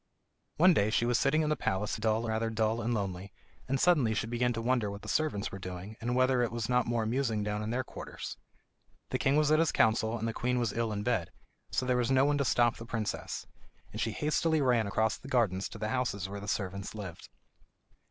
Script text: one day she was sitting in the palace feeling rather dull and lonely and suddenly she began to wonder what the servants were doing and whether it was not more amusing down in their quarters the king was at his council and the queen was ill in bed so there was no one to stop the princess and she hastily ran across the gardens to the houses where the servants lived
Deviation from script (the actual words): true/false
true